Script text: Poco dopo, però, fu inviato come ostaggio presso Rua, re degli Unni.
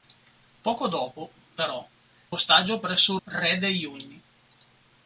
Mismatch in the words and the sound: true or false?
true